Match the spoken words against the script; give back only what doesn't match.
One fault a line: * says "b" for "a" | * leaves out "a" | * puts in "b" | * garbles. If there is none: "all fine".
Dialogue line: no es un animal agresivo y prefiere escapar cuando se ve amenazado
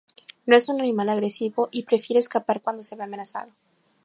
all fine